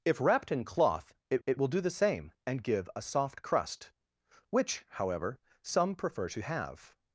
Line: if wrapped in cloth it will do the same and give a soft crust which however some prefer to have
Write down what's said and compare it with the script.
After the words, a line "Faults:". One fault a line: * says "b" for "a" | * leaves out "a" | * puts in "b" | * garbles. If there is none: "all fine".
if wrapped in cloth it it will do the same and give a soft crust which however some prefer to have
Faults:
* puts in "it"